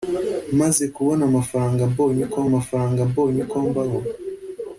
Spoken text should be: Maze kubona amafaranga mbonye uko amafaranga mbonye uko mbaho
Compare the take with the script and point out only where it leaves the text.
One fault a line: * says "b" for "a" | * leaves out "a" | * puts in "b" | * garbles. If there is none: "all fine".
all fine